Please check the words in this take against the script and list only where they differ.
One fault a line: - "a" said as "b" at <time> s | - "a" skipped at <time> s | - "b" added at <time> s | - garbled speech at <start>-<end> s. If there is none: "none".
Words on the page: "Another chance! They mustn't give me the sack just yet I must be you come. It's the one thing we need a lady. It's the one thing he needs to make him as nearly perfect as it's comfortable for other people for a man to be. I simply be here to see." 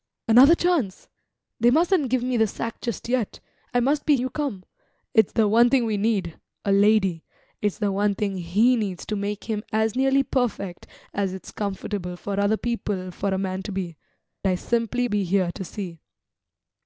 none